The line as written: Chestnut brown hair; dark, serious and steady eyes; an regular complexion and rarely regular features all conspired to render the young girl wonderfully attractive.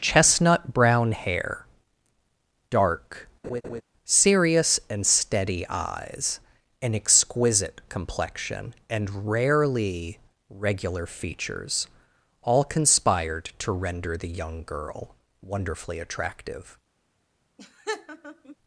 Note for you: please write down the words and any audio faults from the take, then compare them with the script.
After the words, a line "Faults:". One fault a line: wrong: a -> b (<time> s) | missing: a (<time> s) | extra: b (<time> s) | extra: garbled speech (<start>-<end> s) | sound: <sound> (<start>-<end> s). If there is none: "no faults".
Chestnut brown hair; dark, serious and steady eyes; an exquisite complexion and rarely regular features all conspired to render the young girl wonderfully attractive.
Faults:
sound: laugh (3.4-3.8 s)
wrong: regular -> exquisite (6.9 s)
sound: laugh (17.6-18.6 s)